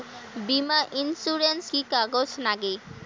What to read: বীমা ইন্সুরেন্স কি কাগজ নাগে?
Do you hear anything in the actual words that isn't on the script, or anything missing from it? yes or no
no